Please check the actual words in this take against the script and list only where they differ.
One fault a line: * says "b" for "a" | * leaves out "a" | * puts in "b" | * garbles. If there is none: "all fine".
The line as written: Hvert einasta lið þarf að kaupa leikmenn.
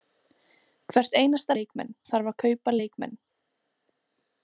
* says "leikmenn" for "lið"